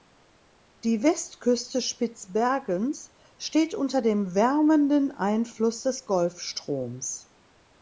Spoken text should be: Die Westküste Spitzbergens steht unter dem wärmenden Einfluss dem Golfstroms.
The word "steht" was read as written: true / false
true